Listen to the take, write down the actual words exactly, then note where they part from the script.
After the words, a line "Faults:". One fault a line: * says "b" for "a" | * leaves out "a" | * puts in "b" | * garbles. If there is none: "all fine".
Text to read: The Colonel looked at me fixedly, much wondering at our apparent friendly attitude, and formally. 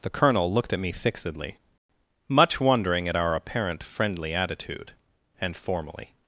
The Colonel looked at me fixedly, much wondering at our apparent friendly attitude, and formally.
Faults:
all fine